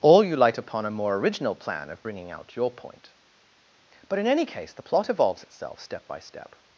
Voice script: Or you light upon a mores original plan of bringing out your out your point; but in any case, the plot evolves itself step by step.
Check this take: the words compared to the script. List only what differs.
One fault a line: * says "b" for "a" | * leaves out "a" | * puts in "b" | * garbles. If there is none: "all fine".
* says "more" for "mores"
* leaves out "out your"